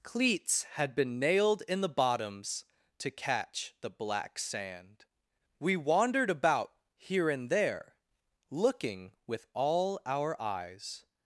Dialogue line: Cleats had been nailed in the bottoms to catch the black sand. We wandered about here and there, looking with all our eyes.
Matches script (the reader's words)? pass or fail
pass